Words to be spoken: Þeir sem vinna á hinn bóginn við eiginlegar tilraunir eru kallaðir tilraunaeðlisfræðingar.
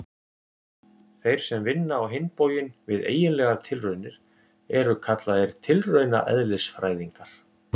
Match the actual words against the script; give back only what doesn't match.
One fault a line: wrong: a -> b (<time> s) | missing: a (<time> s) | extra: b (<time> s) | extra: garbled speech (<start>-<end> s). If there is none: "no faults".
no faults